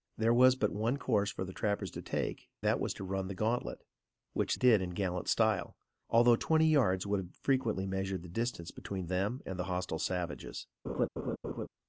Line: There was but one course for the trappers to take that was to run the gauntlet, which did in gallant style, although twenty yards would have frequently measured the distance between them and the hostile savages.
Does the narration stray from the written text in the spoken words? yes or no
no